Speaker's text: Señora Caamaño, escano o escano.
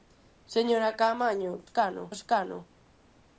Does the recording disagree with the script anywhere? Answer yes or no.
no